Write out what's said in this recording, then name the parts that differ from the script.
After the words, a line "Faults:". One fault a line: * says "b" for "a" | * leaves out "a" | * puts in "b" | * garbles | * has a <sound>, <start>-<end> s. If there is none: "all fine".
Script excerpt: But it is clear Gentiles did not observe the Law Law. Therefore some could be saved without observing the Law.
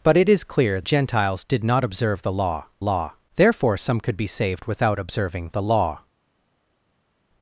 But it is clear Gentiles did not observe the Law Law. Therefore some could be saved without observing the Law.
Faults:
all fine